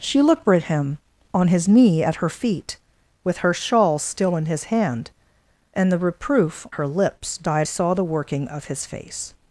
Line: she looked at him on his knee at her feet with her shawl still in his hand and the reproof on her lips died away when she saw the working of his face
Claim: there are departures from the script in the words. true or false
true